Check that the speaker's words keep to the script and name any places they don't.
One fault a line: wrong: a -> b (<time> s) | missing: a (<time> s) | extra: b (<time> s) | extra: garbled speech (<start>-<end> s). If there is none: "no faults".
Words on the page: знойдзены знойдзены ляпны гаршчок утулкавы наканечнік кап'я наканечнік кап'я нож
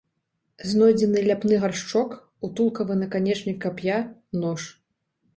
missing: знойдзены (1.2 s)
missing: наканечнік кап'я (4.0 s)